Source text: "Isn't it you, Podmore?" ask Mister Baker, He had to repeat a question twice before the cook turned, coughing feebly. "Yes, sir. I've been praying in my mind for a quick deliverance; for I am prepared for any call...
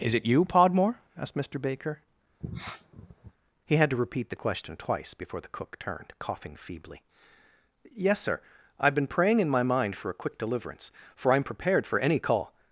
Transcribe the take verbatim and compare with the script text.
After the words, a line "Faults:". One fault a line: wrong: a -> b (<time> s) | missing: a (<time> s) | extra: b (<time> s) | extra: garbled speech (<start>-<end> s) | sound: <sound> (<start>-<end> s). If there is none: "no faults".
"Is it you, Podmore?" asked Mister Baker, He had to repeat the question twice before the cook turned, coughing feebly. "Yes, sir. I've been praying in my mind for a quick deliverance; for I am prepared for any call...
Faults:
wrong: Isn't -> Is (0.0 s)
wrong: ask -> asked (1.2 s)
sound: sniff (2.4-3.3 s)
wrong: a -> the (4.3 s)